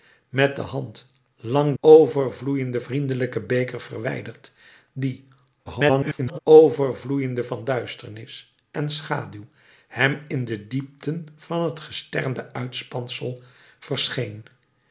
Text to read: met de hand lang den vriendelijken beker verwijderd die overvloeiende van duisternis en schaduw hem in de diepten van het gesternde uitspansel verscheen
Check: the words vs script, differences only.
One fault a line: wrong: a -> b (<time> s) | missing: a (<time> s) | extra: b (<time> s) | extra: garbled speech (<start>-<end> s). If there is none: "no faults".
wrong: den -> overvloeiende (1.8 s)
extra: garbled speech (5.7-6.4 s)